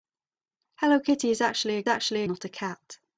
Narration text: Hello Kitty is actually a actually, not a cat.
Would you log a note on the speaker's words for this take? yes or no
no